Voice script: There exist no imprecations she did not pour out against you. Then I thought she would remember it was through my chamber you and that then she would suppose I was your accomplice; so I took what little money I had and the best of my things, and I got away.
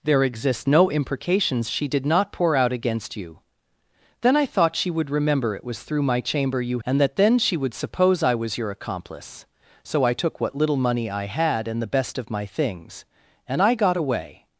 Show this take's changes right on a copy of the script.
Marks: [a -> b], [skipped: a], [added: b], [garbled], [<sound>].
There exist no imprecations she did not pour out against you. Then I thought she would remember it was through my chamber you and that then she would suppose I was your accomplice; so I took what little money I had and the best of my things, and I got away.